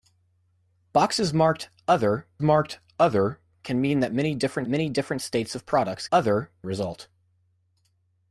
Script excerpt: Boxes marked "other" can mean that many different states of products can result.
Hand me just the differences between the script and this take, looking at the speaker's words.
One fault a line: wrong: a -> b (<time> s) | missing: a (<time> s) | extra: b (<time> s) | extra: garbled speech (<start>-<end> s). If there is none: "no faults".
extra: marked other (2.4 s)
extra: many different (4.7 s)
wrong: can -> other (6.1 s)